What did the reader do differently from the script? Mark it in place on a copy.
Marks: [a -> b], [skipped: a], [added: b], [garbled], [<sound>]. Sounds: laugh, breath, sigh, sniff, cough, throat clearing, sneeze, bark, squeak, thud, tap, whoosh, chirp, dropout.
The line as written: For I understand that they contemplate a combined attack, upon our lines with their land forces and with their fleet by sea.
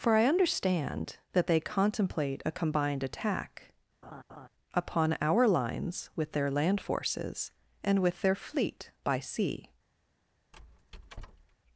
For I understand that they contemplate a combined attack, [laugh] upon our lines with their land forces and with their fleet by sea. [squeak]